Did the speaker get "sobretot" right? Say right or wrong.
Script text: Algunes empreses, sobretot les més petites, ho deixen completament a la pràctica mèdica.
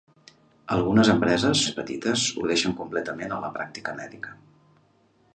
wrong